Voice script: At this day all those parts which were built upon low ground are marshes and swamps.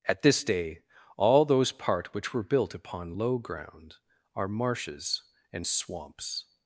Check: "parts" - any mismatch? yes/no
yes